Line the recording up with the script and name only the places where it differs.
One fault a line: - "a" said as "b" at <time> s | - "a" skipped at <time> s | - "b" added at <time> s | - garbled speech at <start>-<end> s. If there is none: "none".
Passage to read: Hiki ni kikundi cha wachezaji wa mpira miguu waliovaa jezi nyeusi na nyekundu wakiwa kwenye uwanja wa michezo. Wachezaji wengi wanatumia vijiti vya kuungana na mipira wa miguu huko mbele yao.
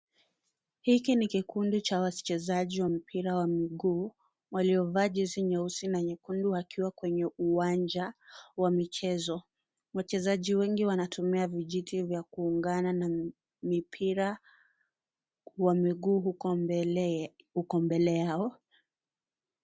- "wa" added at 3.4 s